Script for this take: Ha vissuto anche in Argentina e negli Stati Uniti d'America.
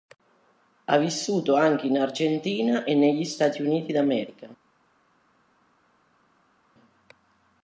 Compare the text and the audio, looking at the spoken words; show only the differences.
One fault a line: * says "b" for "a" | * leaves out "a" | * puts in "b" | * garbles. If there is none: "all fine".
all fine